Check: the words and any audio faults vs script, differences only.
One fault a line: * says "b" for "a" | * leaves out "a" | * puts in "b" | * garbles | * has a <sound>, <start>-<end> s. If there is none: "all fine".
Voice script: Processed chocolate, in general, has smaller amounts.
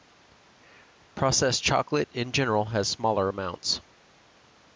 all fine